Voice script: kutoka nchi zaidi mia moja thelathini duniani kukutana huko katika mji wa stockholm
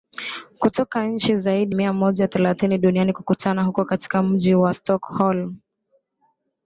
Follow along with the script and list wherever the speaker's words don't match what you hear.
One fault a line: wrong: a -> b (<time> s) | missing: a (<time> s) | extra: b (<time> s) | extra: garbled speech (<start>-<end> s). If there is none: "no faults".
no faults